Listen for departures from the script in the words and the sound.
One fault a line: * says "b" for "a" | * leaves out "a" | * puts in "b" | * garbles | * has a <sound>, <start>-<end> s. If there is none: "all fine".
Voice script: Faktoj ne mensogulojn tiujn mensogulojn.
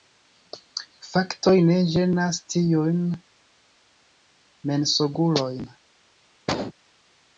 * says "ĝenas" for "mensogulojn"
* has a cough, 6.5-6.7 s